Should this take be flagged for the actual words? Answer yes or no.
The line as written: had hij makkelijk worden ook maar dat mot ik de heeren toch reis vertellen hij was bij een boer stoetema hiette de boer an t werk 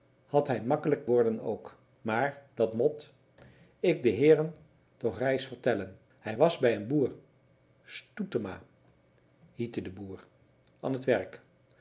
no